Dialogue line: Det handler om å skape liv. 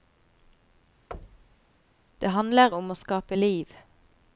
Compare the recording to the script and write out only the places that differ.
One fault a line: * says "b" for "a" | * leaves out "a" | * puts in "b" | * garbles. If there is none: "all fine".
all fine